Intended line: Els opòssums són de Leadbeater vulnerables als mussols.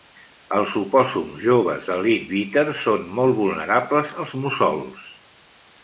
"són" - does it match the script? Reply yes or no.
no